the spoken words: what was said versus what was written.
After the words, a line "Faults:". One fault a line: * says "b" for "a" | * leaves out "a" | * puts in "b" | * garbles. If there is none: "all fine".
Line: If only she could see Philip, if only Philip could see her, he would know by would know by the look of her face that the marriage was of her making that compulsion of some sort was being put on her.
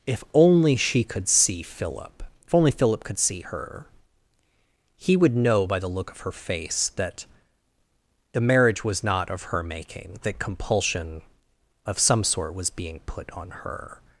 If only she could see Philip, if only Philip could see her, he would know by the look of her face that the marriage was not of her making that compulsion of some sort was being put on her.
Faults:
* leaves out "would know by"
* puts in "not"